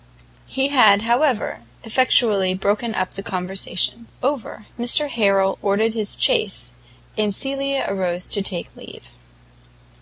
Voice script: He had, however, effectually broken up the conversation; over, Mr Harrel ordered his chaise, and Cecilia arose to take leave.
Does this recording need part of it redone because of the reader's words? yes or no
no